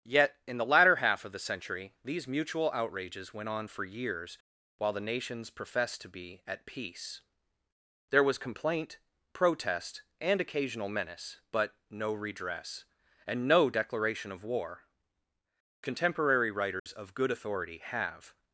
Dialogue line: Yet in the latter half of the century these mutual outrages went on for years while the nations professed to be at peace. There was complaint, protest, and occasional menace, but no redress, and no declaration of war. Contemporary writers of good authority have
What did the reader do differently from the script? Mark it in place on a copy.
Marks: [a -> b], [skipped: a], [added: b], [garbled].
Yet in the latter half of the century these mutual outrages went on for years while the nations professed to be at peace. There was complaint, protest, and occasional menace, but no redress, and no declaration of war. Contemporary writers of good authority have